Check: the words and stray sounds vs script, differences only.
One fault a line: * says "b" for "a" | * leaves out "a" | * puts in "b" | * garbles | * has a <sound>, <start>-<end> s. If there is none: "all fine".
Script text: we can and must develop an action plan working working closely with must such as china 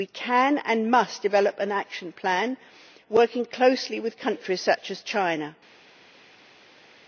* leaves out "working"
* says "countries" for "must"